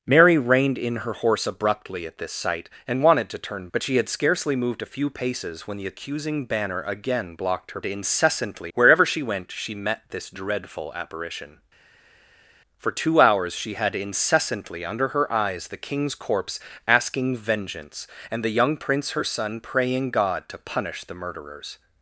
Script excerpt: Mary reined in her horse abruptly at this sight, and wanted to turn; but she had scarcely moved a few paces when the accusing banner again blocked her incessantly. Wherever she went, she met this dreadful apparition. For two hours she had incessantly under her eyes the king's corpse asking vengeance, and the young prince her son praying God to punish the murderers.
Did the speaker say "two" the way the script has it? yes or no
yes